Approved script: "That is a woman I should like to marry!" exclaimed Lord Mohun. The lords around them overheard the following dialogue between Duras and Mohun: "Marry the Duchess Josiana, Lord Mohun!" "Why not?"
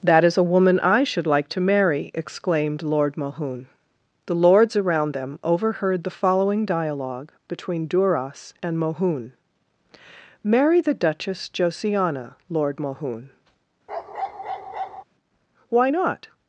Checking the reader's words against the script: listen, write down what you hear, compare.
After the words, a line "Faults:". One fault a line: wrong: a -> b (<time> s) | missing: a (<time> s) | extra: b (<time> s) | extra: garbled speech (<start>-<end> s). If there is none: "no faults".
"That is a woman I should like to marry!" exclaimed Lord Mohun. The lords around them overheard the following dialogue between Duras and Mohun: "Marry the Duchess Josiana, Lord Mohun!" "Why not?"
Faults:
no faults